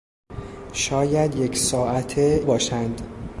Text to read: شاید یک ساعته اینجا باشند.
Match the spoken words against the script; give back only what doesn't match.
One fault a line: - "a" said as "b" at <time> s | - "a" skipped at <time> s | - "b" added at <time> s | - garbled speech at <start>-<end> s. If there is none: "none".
- "اینجا" skipped at 2.4 s